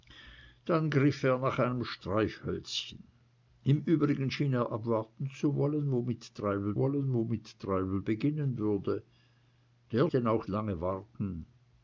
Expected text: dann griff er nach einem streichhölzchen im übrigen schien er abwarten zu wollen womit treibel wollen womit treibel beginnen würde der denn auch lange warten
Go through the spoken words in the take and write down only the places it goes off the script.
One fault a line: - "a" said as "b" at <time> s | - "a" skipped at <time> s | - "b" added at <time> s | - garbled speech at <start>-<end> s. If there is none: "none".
none